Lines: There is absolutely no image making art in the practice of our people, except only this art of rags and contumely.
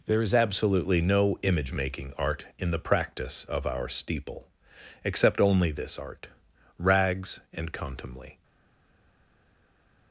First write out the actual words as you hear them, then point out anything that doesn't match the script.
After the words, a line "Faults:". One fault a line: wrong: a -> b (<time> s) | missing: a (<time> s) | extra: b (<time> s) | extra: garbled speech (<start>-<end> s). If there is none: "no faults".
There is absolutely no image making art in the practice of our steeple, except only this art rags and contumely.
Faults:
wrong: people -> steeple (3.9 s)
missing: of (6.3 s)